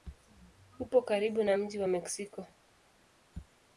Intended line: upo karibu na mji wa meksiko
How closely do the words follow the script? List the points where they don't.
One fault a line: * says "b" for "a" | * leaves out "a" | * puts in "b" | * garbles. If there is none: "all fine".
all fine